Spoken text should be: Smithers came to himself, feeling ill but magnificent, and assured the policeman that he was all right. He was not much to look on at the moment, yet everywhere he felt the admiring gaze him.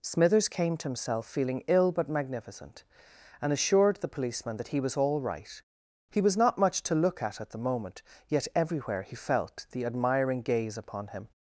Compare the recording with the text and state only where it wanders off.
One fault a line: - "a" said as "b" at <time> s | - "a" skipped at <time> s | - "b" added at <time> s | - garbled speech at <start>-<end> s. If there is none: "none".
- "on" said as "at" at 7.2 s
- "upon" added at 10.8 s